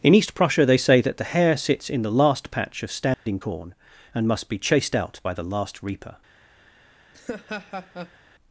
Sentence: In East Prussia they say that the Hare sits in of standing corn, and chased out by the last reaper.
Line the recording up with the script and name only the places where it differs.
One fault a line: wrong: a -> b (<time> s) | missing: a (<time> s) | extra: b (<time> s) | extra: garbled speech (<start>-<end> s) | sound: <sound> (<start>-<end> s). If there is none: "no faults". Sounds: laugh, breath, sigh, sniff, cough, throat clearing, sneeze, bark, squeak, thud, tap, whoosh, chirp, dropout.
extra: the last patch (2.0 s)
sound: dropout (3.1-3.3 s)
extra: must be (4.3 s)
sound: laugh (7.1-8.2 s)